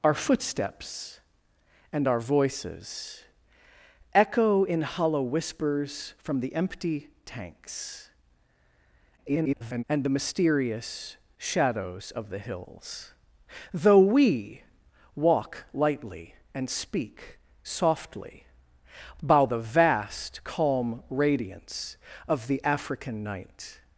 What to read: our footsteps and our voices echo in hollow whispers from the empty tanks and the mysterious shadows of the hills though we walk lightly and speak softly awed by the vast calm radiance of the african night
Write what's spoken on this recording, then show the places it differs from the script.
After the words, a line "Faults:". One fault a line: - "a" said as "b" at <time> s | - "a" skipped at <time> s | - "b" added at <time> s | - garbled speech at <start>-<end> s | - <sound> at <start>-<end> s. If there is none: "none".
our footsteps and our voices echo in hollow whispers from the empty tanks [garbled] and the mysterious shadows of the hills though we walk lightly and speak softly by the vast calm radiance of the african night
Faults:
- garbled speech at 9.2-9.8 s
- "awed" skipped at 18.5 s